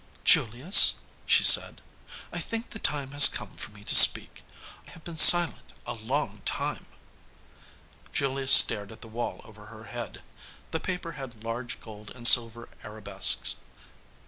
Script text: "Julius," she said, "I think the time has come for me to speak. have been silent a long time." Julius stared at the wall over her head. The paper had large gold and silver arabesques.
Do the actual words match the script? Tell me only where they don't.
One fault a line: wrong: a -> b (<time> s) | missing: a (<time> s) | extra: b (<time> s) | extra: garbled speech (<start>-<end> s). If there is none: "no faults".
no faults